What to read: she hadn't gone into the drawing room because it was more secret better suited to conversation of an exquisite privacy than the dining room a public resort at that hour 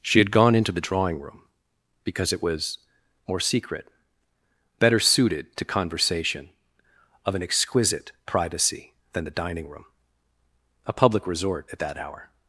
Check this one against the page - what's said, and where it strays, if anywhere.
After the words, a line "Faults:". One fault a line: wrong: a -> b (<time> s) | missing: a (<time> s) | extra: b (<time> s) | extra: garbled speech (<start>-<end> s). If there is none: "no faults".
she had gone into the drawing room because it was more secret better suited to conversation of an exquisite privacy than the dining room a public resort at that hour
Faults:
wrong: hadn't -> had (0.2 s)